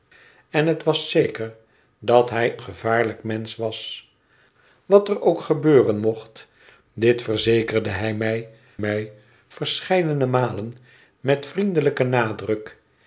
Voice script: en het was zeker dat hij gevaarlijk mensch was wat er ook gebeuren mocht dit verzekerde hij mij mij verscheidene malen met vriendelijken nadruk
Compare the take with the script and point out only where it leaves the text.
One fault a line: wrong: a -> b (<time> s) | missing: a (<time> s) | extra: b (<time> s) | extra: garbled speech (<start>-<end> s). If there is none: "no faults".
no faults